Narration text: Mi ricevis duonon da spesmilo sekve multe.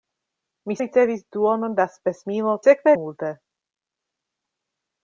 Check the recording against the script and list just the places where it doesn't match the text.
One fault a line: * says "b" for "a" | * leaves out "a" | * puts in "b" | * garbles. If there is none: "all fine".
all fine